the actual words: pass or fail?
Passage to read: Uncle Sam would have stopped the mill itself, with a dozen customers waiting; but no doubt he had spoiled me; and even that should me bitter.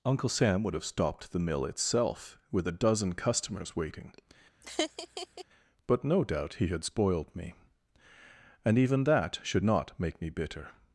fail